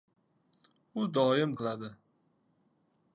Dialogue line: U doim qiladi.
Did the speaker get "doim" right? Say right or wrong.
right